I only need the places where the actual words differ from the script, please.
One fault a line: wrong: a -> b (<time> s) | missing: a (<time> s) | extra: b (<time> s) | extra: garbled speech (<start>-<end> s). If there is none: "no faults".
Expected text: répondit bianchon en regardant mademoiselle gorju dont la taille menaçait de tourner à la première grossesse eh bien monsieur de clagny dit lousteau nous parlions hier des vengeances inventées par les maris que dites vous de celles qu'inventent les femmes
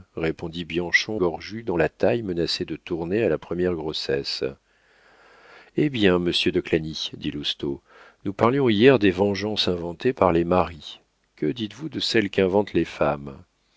missing: en regardant mademoiselle (1.2 s)